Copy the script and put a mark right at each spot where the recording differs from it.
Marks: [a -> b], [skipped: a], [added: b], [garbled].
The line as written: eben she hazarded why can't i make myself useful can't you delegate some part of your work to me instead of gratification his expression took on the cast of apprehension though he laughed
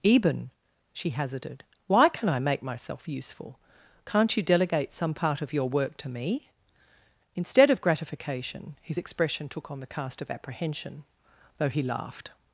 eben she hazarded why [can't -> can] i make myself useful can't you delegate some part of your work to me instead of gratification his expression took on the cast of apprehension though he laughed